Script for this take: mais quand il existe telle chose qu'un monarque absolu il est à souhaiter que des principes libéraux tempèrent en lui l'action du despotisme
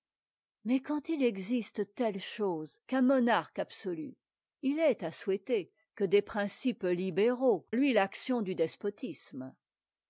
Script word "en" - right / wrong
wrong